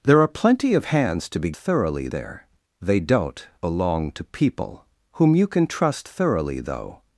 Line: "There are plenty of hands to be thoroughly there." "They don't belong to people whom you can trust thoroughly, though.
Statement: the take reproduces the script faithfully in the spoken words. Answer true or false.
true